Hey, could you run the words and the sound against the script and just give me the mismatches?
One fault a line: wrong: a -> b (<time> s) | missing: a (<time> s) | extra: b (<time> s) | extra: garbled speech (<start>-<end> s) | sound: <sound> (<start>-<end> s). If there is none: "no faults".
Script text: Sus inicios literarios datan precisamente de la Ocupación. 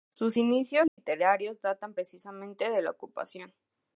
sound: dropout (0.9-1.0 s)